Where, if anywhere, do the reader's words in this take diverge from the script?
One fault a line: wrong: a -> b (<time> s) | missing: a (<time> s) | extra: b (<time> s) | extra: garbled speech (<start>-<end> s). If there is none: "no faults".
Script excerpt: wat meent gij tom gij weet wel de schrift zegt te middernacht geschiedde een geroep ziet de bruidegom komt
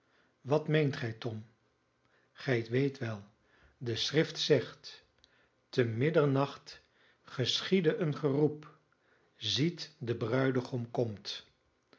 no faults